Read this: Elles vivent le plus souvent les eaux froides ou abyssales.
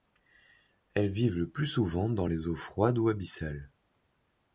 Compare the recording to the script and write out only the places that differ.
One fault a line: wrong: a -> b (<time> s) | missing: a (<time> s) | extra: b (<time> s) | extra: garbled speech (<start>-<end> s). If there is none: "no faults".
extra: dans (2.1 s)